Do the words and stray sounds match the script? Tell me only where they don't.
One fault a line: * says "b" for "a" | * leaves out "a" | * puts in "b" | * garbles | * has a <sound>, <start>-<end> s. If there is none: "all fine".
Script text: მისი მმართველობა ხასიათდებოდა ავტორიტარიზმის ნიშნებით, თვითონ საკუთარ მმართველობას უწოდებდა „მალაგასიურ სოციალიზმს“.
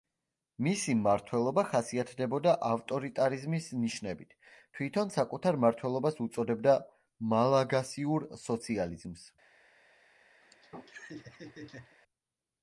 * has a laugh, 10.4-12.0 s